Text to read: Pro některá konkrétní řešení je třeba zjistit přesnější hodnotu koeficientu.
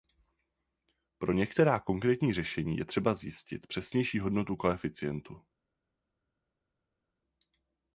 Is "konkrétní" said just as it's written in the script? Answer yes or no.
yes